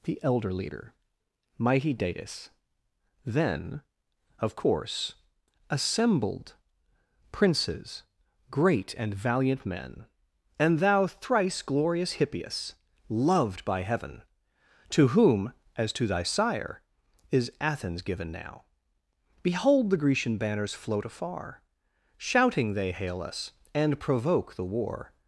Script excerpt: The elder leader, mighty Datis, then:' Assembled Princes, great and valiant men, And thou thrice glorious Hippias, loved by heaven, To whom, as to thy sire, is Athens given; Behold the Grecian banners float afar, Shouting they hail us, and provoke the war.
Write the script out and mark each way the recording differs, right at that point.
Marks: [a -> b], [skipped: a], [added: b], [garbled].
The elder leader, mighty Datis, then:' [added: of course] Assembled Princes, great and valiant men, And thou thrice glorious Hippias, loved by heaven, To whom, as to thy sire, is Athens given; [added: now] Behold the Grecian banners float afar, Shouting they hail us, and provoke the war.